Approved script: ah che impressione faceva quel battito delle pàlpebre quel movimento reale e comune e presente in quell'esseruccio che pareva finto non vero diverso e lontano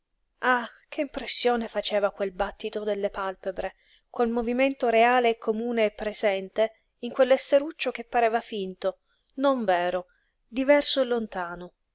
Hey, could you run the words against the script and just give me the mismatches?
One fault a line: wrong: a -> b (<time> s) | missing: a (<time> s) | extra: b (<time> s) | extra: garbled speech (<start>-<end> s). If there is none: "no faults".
no faults